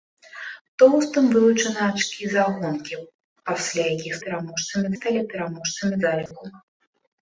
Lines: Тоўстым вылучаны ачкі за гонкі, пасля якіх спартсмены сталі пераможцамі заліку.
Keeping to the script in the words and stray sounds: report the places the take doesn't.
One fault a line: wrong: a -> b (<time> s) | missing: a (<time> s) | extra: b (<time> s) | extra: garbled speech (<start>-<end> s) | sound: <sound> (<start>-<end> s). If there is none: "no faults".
wrong: спартсмены -> пераможцамі (4.3 s)
sound: dropout (6.3-6.3 s)